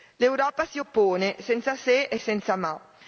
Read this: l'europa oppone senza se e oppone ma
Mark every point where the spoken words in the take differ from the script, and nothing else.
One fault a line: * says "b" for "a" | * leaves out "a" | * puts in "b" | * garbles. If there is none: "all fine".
* puts in "si"
* says "senza" for "oppone"